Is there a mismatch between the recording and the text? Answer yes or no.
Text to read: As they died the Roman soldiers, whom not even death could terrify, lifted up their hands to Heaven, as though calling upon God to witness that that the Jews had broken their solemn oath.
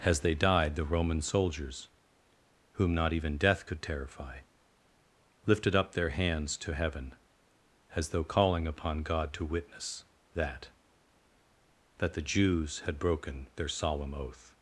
no